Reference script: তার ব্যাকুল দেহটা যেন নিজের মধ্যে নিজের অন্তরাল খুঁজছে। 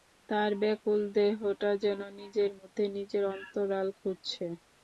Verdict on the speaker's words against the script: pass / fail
pass